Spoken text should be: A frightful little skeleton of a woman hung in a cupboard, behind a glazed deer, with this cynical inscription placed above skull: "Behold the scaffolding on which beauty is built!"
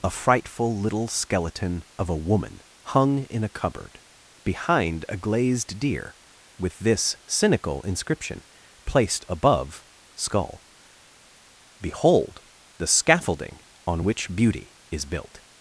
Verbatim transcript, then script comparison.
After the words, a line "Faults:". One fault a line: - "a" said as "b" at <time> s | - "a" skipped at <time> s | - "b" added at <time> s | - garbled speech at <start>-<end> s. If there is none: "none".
A frightful little skeleton of a woman hung in a cupboard, behind a glazed deer, with this cynical inscription placed above skull: "Behold the scaffolding on which beauty is built!"
Faults:
none